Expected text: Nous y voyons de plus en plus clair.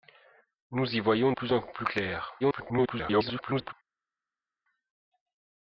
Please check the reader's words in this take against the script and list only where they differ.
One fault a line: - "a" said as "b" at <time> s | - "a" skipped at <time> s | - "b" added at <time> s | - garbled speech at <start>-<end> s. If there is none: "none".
- "de" skipped at 1.3 s
- garbled speech at 2.4-3.7 s